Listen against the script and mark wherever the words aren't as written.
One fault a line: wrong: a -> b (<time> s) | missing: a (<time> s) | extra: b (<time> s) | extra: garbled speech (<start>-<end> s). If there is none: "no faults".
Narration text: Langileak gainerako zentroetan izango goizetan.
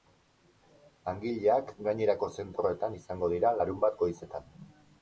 extra: dira larunbat (3.4 s)